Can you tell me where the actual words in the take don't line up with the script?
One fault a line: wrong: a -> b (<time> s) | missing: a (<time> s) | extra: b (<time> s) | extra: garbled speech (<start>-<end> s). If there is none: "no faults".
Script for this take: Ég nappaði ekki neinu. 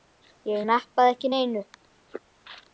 no faults